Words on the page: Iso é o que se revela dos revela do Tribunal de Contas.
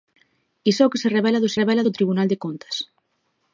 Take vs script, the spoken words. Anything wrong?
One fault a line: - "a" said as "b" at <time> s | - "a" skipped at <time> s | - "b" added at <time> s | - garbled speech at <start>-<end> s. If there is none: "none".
none